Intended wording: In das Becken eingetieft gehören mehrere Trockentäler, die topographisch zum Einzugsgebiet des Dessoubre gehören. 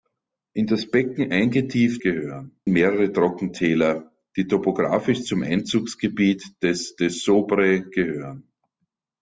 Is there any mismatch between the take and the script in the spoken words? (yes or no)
no